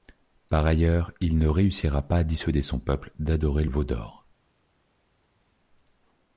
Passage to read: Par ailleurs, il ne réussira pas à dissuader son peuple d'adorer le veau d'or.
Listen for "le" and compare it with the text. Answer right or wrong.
wrong